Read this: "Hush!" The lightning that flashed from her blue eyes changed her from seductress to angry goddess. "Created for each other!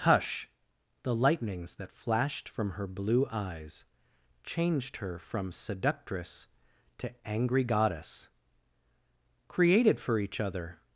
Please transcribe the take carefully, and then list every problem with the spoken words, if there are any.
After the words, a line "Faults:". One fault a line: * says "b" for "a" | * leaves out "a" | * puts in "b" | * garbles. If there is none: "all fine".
"Hush!" The lightnings that flashed from her blue eyes changed her from seductress to angry goddess. "Created for each other!
Faults:
* says "lightnings" for "lightning"